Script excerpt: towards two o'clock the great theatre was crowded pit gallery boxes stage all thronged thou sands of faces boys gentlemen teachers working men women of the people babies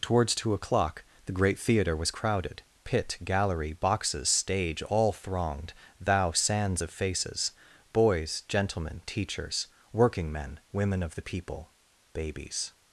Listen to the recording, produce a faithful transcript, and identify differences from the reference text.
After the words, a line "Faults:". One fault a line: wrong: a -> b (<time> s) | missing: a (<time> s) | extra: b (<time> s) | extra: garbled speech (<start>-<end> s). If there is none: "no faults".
towards two o'clock the great theatre was crowded pit gallery boxes stage all thronged thou sands of faces boys gentlemen teachers working men women of the people babies
Faults:
no faults